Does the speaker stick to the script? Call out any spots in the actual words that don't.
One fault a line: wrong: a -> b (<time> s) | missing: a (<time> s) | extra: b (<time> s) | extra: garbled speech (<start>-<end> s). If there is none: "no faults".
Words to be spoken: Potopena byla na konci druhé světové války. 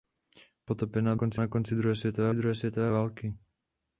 wrong: byla -> konci (1.1 s)
extra: druhé světové (2.3 s)